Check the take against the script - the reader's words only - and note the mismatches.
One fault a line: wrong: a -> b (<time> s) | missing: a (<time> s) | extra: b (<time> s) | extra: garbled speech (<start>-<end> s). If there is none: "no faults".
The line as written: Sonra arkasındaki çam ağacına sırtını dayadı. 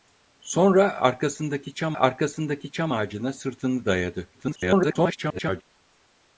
extra: arkasındaki çam (2.0 s)
extra: garbled speech (4.3-5.6 s)